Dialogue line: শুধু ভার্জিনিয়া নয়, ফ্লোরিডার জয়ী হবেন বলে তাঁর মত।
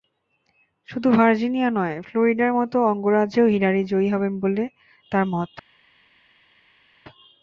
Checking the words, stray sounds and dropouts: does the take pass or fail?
fail